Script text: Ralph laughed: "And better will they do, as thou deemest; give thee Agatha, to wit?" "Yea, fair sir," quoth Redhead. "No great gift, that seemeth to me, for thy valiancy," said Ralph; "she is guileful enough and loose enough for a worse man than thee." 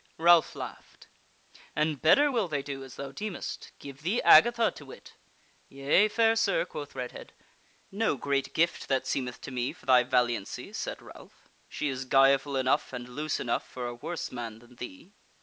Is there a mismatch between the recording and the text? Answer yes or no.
no